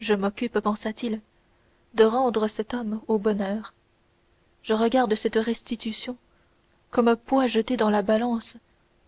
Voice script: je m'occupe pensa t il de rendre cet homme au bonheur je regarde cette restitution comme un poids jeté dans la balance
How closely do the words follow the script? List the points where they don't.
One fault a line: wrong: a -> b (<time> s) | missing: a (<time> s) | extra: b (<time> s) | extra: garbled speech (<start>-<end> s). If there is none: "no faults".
no faults